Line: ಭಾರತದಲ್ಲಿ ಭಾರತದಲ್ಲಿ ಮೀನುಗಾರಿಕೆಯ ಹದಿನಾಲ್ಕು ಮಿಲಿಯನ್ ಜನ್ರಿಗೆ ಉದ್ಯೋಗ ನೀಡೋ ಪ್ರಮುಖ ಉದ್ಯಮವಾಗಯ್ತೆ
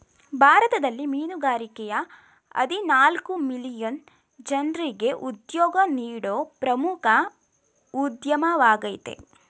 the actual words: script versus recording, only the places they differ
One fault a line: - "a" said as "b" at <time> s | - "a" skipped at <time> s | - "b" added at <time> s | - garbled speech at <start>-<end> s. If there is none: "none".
- "ಭಾರತದಲ್ಲಿ" skipped at 1.1 s